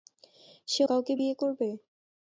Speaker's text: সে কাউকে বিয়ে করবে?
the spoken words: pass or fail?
pass